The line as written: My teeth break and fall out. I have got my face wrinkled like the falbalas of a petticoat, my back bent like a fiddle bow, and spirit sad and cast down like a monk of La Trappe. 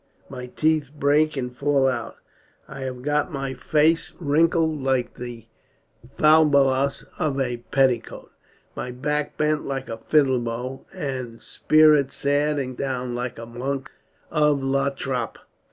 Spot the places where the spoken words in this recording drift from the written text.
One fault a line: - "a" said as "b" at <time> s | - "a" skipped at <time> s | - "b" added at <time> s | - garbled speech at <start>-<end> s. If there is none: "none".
- "cast" skipped at 12.8 s